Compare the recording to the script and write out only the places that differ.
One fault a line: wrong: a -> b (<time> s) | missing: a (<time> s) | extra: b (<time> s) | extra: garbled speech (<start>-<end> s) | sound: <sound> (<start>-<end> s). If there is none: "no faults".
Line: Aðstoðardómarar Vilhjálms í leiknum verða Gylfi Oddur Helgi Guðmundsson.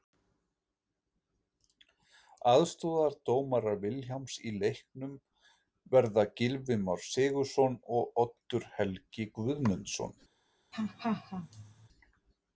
extra: Már Sigurðsson og (6.9 s)
sound: laugh (10.7-11.9 s)